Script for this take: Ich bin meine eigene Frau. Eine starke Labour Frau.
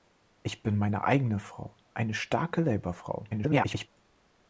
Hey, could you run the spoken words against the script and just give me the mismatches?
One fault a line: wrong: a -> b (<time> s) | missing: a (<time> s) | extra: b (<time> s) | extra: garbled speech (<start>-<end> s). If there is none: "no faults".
extra: garbled speech (3.3-3.9 s)